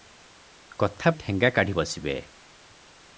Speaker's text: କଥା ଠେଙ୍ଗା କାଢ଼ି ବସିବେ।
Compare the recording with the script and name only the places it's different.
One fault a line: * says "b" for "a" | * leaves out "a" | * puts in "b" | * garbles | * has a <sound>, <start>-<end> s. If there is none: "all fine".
all fine